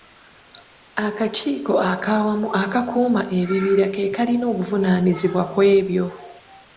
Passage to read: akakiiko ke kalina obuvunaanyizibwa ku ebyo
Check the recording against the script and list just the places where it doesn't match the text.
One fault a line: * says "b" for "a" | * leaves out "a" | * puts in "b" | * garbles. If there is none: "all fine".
* puts in "ak'awamu akakuuma ebibira"